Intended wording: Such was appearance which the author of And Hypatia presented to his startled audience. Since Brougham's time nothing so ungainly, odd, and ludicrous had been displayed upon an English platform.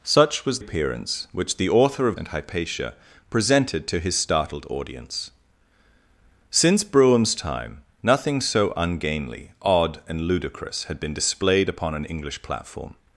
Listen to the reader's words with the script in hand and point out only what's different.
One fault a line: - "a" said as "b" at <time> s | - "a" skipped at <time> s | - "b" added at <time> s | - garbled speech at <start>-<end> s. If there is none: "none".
none